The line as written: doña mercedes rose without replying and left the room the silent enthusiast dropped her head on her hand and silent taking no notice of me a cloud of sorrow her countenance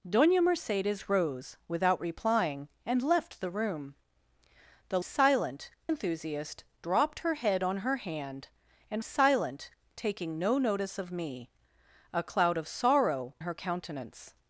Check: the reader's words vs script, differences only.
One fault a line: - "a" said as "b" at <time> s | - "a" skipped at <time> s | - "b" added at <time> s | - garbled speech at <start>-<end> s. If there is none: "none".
none